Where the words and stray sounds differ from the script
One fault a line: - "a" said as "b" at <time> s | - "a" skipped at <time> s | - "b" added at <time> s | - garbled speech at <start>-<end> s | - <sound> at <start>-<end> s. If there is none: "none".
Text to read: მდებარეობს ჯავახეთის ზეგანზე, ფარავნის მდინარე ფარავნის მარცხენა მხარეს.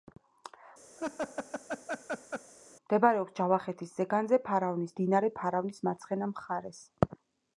- laugh at 1.0-2.5 s